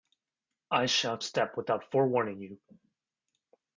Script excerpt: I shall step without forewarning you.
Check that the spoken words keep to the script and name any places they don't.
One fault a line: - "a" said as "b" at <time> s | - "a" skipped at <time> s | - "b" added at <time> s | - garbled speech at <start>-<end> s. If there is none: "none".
none